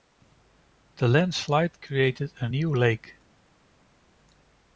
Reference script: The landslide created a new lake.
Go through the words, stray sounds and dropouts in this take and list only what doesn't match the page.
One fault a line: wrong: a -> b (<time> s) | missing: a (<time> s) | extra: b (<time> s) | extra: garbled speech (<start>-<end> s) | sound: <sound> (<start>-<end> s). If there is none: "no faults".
no faults